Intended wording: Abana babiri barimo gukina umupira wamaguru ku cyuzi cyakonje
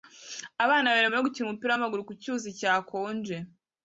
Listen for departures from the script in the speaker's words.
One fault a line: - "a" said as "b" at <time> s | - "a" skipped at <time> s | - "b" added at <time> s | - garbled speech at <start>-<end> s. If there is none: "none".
none